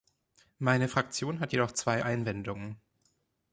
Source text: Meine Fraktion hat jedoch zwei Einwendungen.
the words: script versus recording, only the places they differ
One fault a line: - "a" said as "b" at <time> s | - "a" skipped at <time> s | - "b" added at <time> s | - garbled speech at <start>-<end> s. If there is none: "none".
none